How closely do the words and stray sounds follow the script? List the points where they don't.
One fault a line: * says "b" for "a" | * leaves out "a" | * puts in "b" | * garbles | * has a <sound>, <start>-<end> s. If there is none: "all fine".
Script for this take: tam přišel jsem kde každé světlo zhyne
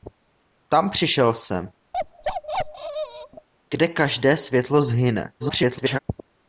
* has a bark, 1.9-3.5 s
* garbles